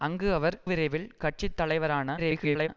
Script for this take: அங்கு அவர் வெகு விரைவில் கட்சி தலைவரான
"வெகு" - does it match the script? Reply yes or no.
no